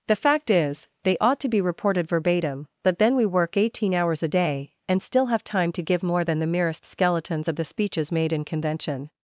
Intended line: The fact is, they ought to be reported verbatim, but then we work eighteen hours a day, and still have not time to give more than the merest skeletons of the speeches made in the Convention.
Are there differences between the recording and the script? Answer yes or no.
yes